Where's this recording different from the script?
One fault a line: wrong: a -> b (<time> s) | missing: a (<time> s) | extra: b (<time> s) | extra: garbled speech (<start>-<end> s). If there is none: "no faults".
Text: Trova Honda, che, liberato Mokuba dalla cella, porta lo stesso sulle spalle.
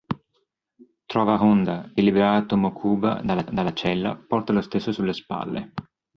missing: che (1.9 s)
extra: dalla (3.5 s)